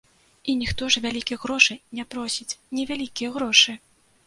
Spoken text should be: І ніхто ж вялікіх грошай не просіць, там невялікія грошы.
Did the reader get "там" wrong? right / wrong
wrong